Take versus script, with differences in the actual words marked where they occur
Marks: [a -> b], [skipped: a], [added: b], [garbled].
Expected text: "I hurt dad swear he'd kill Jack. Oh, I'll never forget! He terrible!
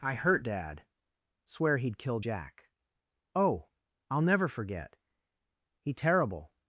"I hurt dad swear he'd kill Jack. Oh, I'll never forget! He terrible!